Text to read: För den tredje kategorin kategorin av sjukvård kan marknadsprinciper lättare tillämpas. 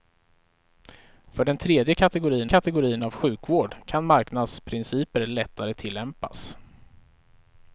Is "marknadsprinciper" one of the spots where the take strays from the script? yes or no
no